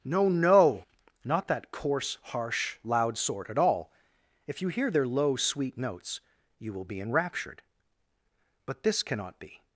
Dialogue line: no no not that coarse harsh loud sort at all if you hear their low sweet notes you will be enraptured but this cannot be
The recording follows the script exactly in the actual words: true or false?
true